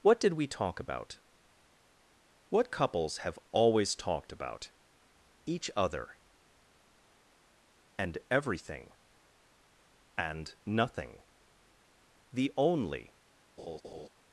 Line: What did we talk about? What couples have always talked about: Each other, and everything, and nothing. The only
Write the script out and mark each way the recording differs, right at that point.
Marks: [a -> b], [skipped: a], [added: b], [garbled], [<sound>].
What did we talk about? What couples have always talked about: Each other, and everything, and nothing. The only [laugh]